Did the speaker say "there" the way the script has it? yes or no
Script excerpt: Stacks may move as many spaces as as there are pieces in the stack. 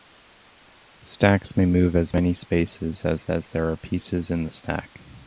yes